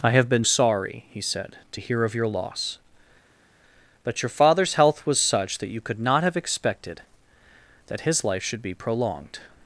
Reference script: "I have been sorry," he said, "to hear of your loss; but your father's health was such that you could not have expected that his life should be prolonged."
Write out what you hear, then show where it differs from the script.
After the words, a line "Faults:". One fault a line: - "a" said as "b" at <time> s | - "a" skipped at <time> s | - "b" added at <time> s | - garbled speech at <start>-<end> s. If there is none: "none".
"I have been sorry," he said, "to hear of your loss; but your father's health was such that you could not have expected that his life should be prolonged."
Faults:
none